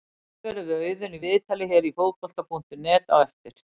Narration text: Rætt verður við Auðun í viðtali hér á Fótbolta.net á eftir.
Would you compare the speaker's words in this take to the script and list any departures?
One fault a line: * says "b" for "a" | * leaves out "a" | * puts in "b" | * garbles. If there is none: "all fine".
all fine